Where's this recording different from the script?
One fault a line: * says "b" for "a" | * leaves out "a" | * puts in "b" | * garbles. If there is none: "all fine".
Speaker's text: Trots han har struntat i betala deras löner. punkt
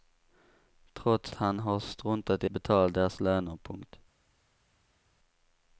all fine